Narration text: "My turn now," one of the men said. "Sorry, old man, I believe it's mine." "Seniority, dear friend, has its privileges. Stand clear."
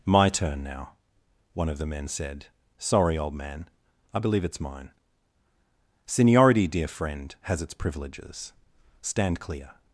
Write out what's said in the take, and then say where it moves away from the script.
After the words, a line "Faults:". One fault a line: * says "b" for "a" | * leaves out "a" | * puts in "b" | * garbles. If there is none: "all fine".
"My turn now," one of the men said. "Sorry, old man, I believe it's mine." "Seniority, dear friend, has its privileges. Stand clear."
Faults:
all fine